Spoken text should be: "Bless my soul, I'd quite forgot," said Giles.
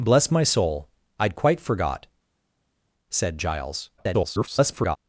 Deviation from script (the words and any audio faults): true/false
true